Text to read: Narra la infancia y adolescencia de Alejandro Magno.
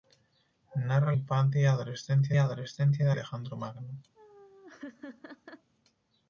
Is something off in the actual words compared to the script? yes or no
yes